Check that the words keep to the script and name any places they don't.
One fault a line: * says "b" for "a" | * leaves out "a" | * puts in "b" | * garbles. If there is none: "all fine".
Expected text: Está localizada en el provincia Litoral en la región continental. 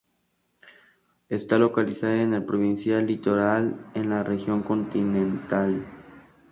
all fine